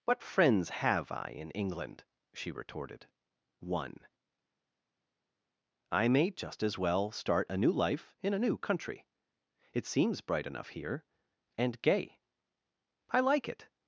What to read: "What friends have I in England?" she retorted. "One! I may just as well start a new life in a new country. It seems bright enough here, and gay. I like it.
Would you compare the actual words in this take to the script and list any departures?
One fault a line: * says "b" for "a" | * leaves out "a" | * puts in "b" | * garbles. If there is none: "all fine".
all fine